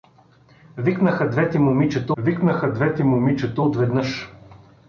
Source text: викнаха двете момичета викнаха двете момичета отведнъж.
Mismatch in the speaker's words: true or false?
false